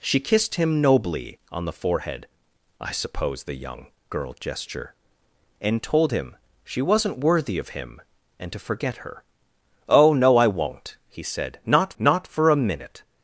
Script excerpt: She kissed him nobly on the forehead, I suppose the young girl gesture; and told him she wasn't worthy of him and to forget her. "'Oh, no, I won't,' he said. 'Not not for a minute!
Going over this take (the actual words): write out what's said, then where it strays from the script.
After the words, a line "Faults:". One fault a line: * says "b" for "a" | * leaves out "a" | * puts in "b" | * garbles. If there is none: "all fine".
She kissed him nobly on the forehead, I suppose the young girl gesture; and told him she wasn't worthy of him and to forget her. "'Oh, no, I won't,' he said. 'Not not for a minute!
Faults:
all fine